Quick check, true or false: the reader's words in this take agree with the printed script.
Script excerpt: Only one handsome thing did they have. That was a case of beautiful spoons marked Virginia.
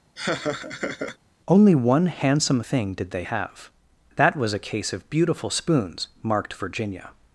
true